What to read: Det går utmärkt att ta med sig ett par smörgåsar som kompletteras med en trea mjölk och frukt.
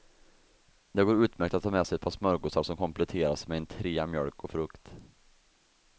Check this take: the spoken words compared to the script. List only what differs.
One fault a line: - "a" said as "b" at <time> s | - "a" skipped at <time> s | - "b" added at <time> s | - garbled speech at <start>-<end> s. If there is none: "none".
none